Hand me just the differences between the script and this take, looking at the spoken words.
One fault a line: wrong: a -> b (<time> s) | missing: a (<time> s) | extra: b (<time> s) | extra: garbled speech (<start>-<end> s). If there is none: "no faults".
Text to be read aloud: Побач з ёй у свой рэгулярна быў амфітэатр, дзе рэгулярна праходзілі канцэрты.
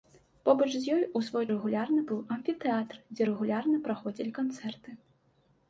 no faults